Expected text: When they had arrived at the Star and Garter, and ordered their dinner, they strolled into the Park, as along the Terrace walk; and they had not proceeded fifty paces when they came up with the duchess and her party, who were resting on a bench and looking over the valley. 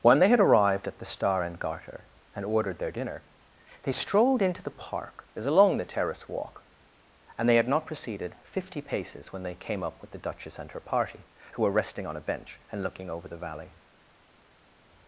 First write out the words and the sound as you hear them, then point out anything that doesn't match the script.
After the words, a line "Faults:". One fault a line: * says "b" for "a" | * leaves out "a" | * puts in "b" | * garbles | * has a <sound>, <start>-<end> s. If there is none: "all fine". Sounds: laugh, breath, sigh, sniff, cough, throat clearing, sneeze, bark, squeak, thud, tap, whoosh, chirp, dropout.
When they had arrived at the Star and Garter, and ordered their dinner, they strolled into the Park, as along the Terrace walk; and they had not proceeded fifty paces when they came up with the duchess and her party, who were resting on a bench and looking over the valley.
Faults:
all fine